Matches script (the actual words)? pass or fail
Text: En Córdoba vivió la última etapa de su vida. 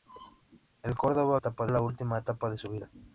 fail